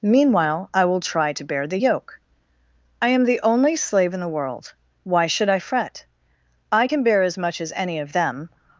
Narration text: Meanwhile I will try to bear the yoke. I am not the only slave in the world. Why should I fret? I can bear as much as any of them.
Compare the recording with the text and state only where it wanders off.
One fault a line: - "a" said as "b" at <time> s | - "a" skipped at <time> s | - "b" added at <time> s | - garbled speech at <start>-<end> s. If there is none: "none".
- "not" skipped at 3.2 s